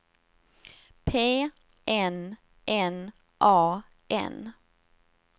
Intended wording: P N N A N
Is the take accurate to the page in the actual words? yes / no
yes